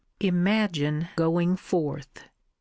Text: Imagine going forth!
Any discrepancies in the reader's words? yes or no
no